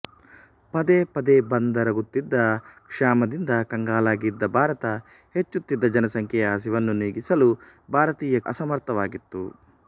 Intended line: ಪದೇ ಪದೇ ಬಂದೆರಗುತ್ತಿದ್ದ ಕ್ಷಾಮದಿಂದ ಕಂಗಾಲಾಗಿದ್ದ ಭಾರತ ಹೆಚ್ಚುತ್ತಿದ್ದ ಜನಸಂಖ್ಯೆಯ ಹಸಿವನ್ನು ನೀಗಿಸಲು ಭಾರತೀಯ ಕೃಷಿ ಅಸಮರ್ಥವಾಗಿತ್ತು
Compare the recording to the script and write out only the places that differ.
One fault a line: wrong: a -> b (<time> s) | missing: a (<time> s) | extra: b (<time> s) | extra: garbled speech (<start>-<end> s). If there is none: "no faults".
missing: ಕೃಷಿ (8.4 s)